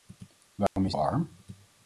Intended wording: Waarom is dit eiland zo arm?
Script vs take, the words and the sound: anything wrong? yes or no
yes